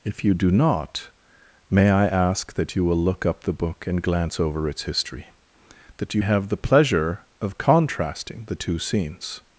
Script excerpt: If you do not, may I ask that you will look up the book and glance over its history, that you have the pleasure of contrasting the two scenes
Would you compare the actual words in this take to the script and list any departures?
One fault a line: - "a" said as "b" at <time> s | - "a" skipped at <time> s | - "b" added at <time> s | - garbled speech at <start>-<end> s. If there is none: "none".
none